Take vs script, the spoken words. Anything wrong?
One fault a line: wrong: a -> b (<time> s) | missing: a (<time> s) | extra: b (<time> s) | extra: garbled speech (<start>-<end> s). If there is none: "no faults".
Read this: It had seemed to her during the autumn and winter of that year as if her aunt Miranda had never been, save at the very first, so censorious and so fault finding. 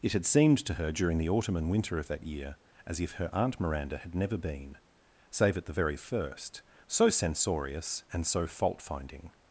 no faults